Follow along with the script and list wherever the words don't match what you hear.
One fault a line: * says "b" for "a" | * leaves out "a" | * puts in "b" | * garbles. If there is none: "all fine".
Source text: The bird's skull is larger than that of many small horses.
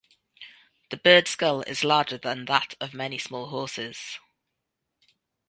all fine